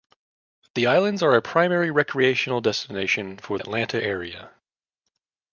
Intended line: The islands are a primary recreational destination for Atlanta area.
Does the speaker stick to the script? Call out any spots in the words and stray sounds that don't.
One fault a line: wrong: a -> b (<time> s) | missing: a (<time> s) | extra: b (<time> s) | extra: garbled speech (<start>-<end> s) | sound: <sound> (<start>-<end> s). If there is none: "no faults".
no faults